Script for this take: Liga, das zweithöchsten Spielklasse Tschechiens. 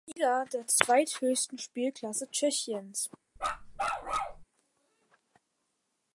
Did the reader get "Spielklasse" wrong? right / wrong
right